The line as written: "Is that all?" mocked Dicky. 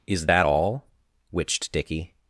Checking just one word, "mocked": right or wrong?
wrong